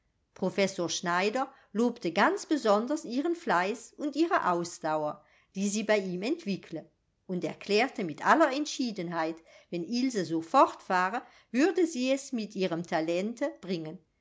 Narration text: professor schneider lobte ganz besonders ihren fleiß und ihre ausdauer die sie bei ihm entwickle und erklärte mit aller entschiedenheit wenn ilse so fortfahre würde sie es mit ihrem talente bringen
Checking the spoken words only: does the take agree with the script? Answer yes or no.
yes